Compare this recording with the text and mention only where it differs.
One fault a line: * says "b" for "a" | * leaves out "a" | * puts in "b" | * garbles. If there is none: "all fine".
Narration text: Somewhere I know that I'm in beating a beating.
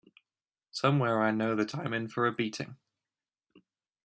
* says "for" for "beating"